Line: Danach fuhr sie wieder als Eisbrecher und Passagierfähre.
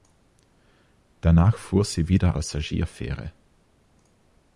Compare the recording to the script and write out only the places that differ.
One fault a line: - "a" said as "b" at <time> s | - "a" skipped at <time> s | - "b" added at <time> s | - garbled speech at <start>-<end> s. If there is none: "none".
- "als Eisbrecher und" skipped at 2.4 s